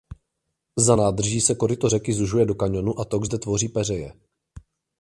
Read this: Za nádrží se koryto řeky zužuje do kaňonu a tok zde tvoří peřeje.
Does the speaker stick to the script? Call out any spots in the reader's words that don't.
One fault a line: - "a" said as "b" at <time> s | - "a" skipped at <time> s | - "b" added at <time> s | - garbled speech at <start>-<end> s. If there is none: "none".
none